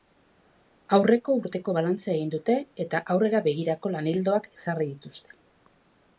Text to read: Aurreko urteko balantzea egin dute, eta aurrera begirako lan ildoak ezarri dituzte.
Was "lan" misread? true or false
false